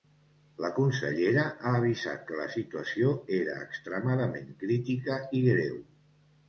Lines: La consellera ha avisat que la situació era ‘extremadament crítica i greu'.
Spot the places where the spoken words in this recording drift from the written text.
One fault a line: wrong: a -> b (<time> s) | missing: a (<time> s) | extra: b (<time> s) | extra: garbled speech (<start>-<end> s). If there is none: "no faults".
no faults